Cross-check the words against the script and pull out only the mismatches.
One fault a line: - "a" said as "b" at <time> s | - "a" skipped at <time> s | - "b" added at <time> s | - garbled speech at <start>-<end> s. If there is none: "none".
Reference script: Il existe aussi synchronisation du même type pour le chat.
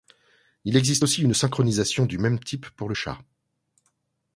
- "une" added at 1.2 s